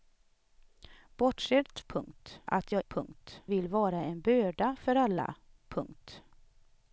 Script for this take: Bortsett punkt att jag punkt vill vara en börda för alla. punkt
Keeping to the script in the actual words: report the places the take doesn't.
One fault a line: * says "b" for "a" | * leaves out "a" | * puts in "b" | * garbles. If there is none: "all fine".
all fine